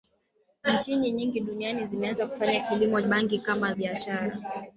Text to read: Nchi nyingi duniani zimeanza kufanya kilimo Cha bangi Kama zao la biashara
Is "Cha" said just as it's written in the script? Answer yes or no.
no